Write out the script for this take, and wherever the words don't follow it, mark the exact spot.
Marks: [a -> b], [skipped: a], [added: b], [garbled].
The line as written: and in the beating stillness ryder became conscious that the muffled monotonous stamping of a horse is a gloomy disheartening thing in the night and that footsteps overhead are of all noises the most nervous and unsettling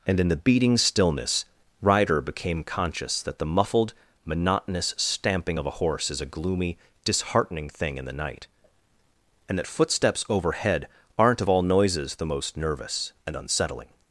and in the beating stillness ryder became conscious that the muffled monotonous stamping of a horse is a gloomy disheartening thing in the night and that footsteps overhead [are -> aren't] of all noises the most nervous and unsettling